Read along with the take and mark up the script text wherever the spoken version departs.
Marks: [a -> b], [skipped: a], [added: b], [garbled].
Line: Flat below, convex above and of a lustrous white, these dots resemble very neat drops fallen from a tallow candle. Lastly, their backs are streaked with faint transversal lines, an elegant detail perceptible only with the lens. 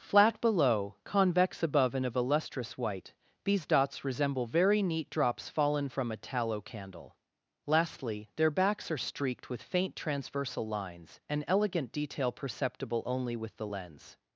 Flat below, convex above and of a lustrous white, these dots resemble very neat drops fallen from a tallow candle. Lastly, their backs are streaked with faint transversal lines, an elegant detail perceptible only with the lens.